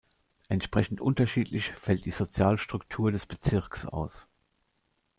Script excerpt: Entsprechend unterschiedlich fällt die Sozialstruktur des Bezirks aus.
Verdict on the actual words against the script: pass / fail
pass